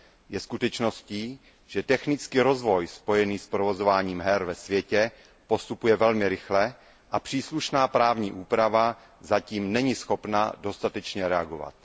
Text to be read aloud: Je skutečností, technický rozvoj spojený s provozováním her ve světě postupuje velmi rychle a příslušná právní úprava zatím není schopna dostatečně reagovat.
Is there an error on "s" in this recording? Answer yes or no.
no